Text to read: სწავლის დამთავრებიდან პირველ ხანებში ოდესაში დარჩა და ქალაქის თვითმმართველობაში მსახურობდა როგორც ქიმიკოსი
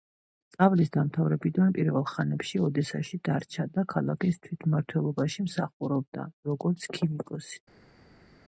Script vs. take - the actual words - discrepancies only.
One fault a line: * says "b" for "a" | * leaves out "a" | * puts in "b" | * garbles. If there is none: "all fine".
all fine